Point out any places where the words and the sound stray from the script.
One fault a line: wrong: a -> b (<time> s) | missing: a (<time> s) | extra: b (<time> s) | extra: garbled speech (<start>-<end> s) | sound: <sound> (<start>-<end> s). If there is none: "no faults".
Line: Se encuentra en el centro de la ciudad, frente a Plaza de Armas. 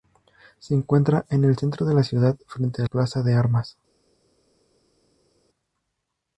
no faults